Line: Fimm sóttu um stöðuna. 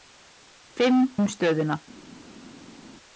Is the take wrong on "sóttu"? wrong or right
wrong